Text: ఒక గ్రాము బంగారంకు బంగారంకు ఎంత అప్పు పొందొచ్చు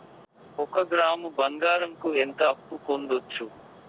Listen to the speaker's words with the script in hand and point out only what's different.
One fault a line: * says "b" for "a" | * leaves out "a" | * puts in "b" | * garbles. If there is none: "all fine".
* leaves out "బంగారంకు"